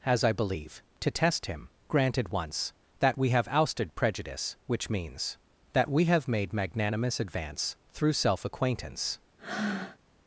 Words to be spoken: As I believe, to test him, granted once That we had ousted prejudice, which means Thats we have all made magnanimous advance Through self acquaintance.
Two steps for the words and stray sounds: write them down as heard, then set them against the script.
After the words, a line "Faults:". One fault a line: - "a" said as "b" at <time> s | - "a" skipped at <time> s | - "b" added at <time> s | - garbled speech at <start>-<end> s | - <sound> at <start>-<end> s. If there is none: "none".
As I believe, to test him, granted once That we have ousted prejudice, which means That we have made magnanimous advance Through self acquaintance.
Faults:
- "had" said as "have" at 3.3 s
- "Thats" said as "That" at 5.7 s
- "all" skipped at 6.3 s
- breath at 9.4-10.0 s